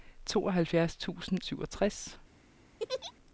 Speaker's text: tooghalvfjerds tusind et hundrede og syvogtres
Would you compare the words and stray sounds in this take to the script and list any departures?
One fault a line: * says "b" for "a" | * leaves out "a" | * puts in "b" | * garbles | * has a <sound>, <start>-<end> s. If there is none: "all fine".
* leaves out "et hundrede og"
* has a laugh, 2.8-3.1 s